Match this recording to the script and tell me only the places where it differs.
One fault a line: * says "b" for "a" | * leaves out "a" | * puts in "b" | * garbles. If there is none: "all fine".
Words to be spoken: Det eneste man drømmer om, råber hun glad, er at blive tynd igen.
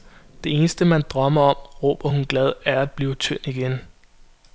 all fine